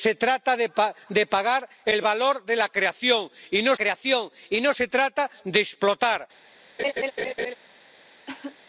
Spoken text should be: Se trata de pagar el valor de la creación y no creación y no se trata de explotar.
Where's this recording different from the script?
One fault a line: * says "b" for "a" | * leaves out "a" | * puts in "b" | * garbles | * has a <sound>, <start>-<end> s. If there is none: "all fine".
* has a laugh, 6.8-7.5 s
* has a cough, 8.3-8.6 s